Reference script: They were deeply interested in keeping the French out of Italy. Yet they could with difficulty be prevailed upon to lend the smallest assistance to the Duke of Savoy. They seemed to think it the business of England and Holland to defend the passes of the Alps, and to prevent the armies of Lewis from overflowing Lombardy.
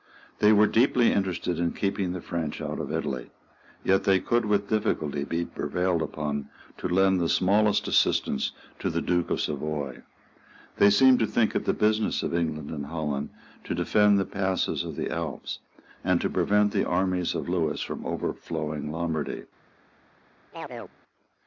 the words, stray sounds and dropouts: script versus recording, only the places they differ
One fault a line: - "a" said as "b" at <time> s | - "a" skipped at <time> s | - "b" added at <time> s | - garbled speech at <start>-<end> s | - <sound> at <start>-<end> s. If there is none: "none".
- chirp at 20.5-21.0 s